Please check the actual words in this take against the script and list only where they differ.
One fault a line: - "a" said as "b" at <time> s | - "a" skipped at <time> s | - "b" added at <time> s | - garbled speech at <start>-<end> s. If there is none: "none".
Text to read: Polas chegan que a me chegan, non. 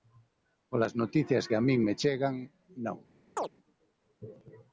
- "chegan" said as "noticias" at 1.0 s
- "min" added at 1.7 s